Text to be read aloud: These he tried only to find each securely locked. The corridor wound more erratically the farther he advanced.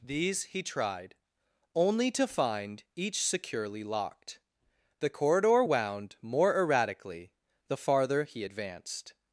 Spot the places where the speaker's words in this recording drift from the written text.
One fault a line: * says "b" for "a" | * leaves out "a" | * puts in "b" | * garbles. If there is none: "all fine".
all fine